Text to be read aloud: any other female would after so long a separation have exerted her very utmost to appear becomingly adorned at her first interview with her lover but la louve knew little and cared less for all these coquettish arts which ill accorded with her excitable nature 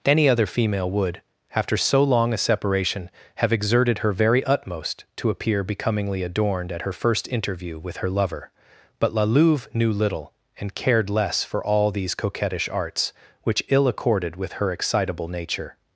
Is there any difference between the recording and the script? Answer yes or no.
no